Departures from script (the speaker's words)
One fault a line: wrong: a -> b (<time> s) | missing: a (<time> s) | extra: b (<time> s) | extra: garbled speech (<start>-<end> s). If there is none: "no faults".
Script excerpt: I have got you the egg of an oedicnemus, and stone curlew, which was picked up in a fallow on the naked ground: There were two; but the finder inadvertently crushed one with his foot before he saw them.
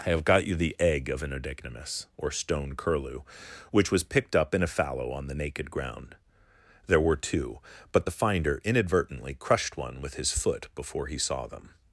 wrong: and -> or (2.2 s)